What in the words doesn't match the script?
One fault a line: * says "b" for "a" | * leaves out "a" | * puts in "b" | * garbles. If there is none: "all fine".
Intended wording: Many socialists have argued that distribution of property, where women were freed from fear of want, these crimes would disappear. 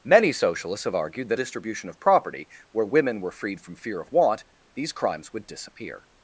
all fine